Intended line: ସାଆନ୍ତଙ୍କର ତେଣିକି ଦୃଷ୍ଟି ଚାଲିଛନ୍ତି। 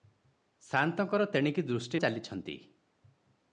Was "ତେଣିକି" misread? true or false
false